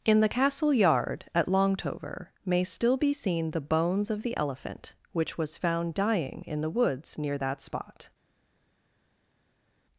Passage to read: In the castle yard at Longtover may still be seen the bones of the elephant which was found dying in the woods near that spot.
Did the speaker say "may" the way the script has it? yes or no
yes